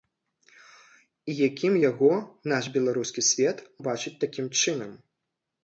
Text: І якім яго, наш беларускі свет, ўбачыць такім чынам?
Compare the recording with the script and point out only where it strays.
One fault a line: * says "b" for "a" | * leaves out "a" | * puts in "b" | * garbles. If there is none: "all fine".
all fine